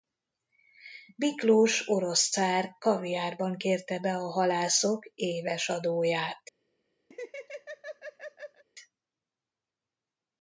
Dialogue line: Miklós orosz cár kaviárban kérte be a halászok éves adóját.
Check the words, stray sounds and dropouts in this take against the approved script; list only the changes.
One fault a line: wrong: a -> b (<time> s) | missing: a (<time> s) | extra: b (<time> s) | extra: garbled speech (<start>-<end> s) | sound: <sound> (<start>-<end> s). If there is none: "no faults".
sound: laugh (7.1-8.6 s)